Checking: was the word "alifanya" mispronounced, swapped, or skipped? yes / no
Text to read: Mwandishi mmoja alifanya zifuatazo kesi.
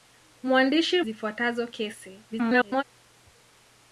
yes